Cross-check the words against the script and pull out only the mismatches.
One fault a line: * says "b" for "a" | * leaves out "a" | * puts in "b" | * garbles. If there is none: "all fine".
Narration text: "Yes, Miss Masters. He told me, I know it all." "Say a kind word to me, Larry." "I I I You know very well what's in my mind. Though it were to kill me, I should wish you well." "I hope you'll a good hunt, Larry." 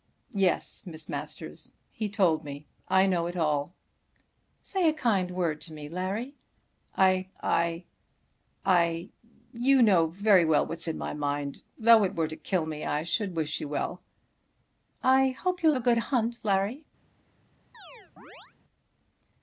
all fine